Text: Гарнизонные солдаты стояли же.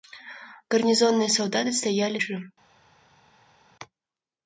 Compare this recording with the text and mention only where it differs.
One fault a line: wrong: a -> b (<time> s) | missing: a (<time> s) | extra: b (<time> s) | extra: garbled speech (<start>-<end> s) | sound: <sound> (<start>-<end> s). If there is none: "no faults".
no faults